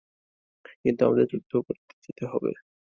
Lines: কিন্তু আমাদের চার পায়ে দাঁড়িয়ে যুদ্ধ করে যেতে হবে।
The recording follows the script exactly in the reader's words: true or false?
false